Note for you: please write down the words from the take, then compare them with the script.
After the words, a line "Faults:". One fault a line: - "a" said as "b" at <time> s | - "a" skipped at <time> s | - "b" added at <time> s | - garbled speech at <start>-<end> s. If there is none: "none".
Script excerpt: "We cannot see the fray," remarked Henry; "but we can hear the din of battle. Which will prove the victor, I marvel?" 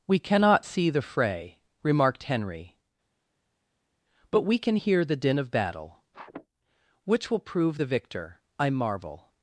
"We cannot see the fray," remarked Henry; "but we can hear the din of battle. Which will prove the victor, I marvel?"
Faults:
none